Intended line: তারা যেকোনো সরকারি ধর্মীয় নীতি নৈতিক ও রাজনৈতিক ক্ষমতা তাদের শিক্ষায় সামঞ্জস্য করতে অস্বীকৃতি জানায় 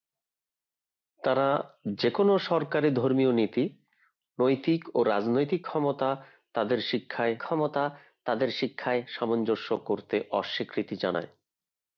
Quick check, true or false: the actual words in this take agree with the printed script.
false